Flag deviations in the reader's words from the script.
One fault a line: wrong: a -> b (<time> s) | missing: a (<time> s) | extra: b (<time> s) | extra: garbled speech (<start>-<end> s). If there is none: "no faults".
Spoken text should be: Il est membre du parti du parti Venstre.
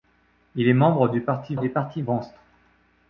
no faults